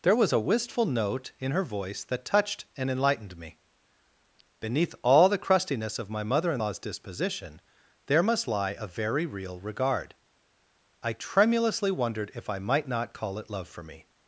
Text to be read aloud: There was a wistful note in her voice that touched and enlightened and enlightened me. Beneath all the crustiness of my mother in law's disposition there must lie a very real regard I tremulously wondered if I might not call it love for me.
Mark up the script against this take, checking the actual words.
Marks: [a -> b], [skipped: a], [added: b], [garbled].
There was a wistful note in her voice that touched and enlightened [skipped: and enlightened] me. Beneath all the crustiness of my mother in law's disposition there must lie a very real regard I tremulously wondered if I might not call it love for me.